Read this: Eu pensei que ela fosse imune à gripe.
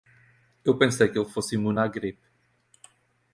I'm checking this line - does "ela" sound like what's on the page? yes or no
no